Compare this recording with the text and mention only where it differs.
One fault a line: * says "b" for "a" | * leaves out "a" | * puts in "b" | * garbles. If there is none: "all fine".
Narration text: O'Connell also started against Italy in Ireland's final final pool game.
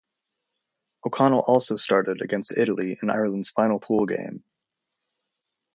* leaves out "final"